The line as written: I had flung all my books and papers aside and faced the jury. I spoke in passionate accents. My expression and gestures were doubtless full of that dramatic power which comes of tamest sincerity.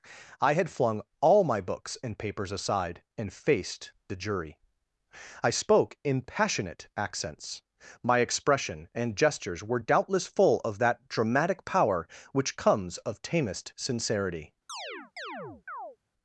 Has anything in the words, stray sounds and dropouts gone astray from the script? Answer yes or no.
yes